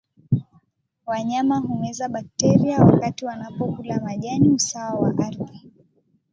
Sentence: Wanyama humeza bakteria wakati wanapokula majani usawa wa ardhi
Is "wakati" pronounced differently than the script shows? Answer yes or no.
no